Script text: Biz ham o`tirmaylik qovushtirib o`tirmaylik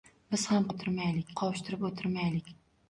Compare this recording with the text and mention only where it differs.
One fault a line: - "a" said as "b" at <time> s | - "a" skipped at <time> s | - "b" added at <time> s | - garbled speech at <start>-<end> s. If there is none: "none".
none